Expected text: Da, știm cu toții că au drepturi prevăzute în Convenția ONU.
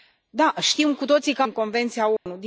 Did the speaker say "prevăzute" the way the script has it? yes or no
no